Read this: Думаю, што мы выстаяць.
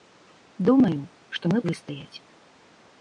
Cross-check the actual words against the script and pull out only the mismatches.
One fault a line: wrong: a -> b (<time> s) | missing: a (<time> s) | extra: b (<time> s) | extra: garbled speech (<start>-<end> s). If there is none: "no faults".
no faults